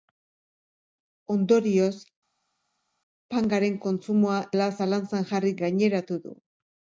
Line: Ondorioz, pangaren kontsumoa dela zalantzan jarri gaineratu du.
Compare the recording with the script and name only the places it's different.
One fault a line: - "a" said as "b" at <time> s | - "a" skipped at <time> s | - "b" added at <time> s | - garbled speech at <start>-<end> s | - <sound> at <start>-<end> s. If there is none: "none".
none